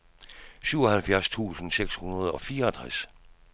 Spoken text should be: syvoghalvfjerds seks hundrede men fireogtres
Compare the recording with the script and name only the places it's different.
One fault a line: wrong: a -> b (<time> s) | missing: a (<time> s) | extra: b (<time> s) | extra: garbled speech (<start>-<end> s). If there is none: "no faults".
extra: tusind (1.3 s)
wrong: men -> og (2.3 s)